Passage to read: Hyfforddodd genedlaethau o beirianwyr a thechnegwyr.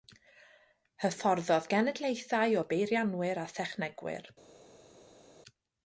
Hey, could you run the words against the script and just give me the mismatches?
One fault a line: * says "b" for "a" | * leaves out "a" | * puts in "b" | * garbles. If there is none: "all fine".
all fine